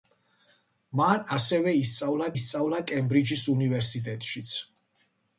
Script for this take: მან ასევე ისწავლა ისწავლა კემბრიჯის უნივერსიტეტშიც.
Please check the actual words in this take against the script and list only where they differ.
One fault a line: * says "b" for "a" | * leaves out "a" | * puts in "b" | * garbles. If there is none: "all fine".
all fine